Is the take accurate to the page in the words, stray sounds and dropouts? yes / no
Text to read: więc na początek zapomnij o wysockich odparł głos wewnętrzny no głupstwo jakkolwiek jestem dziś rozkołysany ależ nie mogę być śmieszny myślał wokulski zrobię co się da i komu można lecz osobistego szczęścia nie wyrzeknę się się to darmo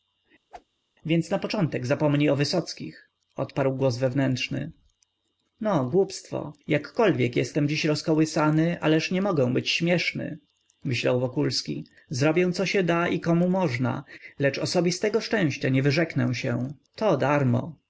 no